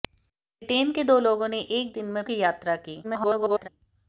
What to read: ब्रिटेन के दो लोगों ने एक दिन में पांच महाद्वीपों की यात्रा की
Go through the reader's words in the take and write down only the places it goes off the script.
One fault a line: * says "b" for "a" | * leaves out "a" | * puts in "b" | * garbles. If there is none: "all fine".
* leaves out "पांच महाद्वीपों"
* garbles